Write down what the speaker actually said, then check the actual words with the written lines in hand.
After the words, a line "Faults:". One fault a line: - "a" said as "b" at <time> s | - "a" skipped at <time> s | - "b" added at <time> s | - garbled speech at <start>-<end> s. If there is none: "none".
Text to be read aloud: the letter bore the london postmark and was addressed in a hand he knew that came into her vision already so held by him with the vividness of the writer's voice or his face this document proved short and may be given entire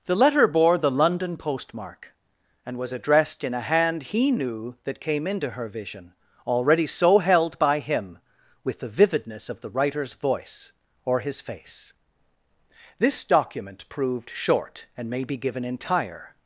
the letter bore the london postmark and was addressed in a hand he knew that came into her vision already so held by him with the vividness of the writer's voice or his face this document proved short and may be given entire
Faults:
none